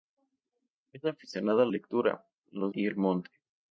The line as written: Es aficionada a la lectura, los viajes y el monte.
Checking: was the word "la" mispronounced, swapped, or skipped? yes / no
yes